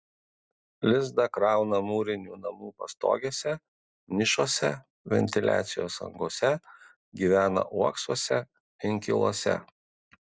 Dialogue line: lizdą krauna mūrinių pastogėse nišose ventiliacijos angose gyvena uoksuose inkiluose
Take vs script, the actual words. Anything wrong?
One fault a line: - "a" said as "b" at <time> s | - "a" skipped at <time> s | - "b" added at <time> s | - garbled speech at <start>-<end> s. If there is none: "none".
- "namų" added at 2.4 s